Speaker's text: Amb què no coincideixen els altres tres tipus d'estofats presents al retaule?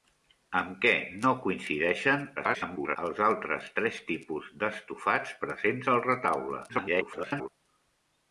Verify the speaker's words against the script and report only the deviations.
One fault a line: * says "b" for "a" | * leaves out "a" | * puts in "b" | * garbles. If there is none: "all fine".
* garbles
* garbles